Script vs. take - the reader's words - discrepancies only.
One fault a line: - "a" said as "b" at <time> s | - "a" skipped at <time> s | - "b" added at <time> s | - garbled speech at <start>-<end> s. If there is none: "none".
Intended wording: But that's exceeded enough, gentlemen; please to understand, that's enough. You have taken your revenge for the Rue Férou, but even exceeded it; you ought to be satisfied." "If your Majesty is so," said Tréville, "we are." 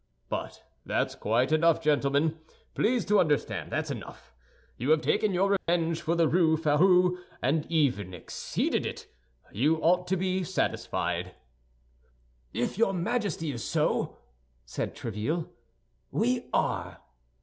- "exceeded" said as "quite" at 1.1 s
- "but" said as "and" at 7.4 s